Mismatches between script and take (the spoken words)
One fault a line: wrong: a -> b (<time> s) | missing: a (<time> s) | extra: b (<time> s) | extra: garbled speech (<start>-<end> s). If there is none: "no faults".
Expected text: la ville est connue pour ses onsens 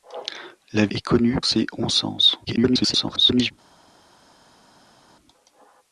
missing: ville (0.9 s)
missing: pour (1.4 s)
extra: garbled speech (2.4-3.5 s)